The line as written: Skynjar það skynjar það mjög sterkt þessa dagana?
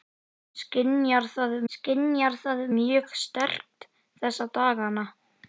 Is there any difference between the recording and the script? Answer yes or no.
no